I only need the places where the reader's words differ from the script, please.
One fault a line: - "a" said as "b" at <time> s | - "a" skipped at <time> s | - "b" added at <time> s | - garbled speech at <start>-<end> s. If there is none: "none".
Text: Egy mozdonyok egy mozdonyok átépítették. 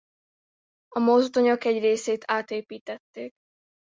- "Egy" said as "A" at 0.9 s
- "mozdonyok" said as "részét" at 1.8 s